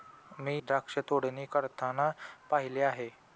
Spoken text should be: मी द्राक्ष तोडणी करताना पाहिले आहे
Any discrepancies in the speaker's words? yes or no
no